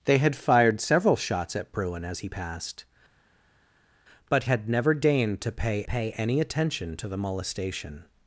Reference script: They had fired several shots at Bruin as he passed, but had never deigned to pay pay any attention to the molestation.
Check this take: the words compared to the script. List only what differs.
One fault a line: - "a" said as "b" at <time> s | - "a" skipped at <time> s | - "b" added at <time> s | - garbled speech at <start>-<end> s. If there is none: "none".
none